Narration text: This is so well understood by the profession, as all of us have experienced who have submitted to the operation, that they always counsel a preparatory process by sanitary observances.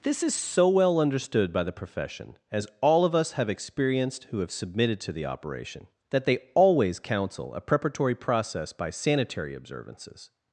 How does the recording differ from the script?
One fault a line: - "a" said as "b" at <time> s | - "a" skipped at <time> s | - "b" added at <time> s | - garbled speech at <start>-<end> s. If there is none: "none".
none